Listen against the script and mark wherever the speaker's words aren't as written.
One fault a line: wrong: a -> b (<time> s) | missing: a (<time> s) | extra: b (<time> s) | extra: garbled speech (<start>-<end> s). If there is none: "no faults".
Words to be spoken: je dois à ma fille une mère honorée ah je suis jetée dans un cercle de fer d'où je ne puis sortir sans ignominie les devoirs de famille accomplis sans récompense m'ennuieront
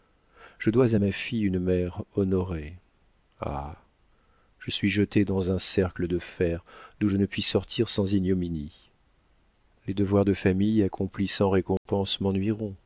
no faults